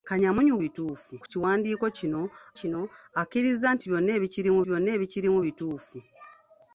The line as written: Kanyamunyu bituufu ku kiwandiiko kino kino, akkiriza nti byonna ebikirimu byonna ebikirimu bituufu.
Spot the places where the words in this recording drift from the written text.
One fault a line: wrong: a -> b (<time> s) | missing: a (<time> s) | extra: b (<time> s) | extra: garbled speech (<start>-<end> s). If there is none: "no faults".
no faults